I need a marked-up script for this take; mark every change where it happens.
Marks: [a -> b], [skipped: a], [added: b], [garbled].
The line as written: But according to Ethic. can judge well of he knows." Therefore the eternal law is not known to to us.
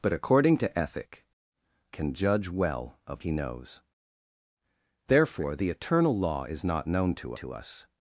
But according to Ethic. can judge well of he knows." Therefore the eternal law is not known to to us.